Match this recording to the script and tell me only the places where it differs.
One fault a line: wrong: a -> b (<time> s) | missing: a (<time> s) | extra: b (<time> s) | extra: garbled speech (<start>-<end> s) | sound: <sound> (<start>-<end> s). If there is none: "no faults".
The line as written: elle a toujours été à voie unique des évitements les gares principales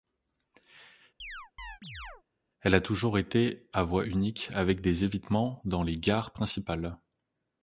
sound: chirp (1.2-2.2 s)
extra: avec (4.5 s)
extra: dans (5.7 s)